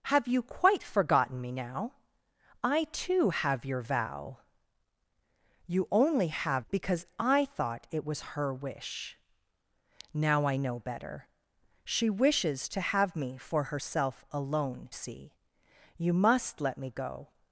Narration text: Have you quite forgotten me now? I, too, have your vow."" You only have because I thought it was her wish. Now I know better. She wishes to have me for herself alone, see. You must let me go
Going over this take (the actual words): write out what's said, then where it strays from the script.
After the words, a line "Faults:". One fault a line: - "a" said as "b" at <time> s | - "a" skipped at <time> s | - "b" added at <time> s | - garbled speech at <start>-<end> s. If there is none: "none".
Have you quite forgotten me now? I, too, have your vow."" You only have because I thought it was her wish. Now I know better. She wishes to have me for herself alone, see. You must let me go
Faults:
none